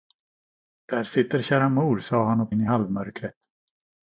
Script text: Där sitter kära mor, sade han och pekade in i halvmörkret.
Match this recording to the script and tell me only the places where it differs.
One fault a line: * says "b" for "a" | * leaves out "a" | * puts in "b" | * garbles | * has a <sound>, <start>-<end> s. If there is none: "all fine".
* leaves out "pekade"